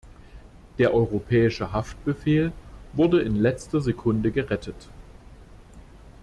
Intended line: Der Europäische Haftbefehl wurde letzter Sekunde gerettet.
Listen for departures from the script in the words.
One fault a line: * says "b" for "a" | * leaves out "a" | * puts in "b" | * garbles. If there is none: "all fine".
* puts in "in"